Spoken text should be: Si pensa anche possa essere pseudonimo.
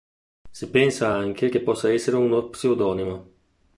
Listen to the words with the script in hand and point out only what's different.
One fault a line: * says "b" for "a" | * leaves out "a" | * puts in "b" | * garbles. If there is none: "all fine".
* puts in "che"
* puts in "uno"